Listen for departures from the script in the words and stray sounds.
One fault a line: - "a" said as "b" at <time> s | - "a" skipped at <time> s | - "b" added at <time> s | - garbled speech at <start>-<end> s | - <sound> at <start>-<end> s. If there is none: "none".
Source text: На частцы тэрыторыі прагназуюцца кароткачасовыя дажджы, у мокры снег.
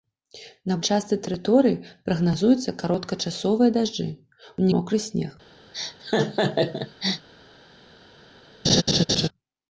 - laugh at 5.7-7.3 s
- laugh at 8.6-9.3 s